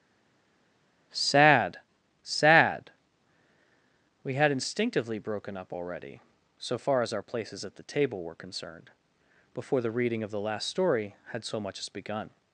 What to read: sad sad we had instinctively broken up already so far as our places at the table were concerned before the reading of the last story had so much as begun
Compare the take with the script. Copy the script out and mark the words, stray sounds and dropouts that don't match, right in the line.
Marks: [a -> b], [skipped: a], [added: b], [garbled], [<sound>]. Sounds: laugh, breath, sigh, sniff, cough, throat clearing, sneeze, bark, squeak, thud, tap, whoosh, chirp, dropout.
sad sad we had instinctively broken up already so far as our places at the table were concerned before the reading of the last story had so much as begun